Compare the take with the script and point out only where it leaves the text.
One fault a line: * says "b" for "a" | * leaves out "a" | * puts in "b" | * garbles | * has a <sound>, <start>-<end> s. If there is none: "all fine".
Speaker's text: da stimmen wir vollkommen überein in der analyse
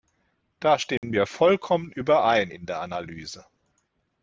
* has a dropout, 1.0-1.0 s